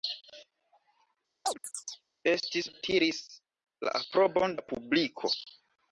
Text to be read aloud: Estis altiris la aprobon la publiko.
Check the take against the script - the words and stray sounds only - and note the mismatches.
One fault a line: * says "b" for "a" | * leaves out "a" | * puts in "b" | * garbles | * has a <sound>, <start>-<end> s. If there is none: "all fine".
* has a chirp, 1.4-2.0 s